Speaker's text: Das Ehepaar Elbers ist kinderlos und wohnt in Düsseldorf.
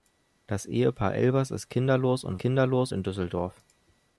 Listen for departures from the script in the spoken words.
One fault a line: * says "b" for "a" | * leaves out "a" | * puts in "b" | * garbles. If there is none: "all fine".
* says "kinderlos" for "wohnt"